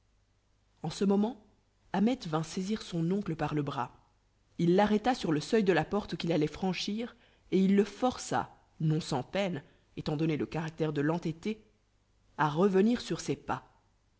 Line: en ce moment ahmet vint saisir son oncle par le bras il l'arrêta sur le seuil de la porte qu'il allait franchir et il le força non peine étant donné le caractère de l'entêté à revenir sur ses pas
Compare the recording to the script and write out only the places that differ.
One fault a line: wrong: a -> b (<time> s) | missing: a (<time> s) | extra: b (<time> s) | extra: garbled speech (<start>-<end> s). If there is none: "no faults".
extra: sans (9.0 s)